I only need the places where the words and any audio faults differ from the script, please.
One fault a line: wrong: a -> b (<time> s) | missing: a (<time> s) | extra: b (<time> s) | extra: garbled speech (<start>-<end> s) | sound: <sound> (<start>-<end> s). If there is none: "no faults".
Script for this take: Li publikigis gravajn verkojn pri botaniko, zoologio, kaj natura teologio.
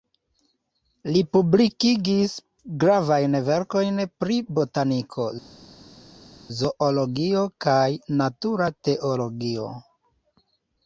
no faults